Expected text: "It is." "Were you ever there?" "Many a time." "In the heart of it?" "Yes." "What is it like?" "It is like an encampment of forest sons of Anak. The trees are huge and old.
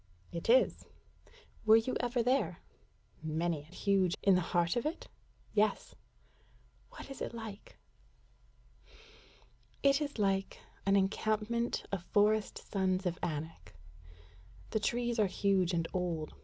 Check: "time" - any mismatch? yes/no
yes